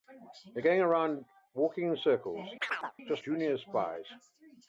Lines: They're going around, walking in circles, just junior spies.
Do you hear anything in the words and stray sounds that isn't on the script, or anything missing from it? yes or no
yes